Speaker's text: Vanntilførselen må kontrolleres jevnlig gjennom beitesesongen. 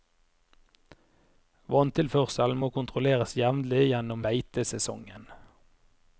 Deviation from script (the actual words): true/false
false